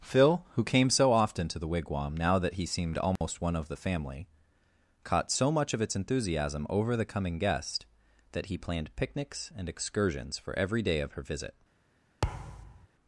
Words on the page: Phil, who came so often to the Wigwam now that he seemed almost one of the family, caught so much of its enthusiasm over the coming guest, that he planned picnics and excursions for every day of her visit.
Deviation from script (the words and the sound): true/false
true